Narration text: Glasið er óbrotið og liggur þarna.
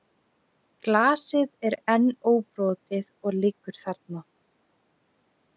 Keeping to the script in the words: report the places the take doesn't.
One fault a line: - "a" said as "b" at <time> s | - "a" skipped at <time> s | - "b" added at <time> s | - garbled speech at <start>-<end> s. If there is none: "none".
- "enn" added at 2.0 s